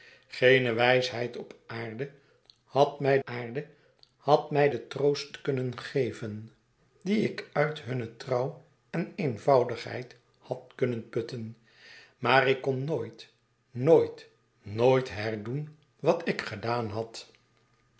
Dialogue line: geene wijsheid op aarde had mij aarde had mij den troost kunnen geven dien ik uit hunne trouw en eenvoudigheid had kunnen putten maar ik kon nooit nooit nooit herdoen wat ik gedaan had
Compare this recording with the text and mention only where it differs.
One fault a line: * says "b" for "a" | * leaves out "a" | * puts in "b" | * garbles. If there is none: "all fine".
all fine